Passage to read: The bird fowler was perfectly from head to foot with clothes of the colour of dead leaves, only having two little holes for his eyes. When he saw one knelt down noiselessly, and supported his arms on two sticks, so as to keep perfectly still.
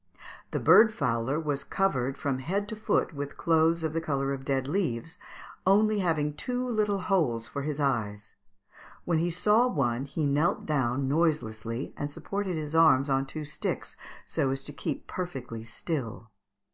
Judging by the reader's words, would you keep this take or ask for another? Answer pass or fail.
fail